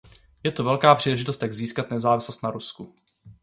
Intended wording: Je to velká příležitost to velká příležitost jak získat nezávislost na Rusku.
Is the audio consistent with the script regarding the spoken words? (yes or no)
no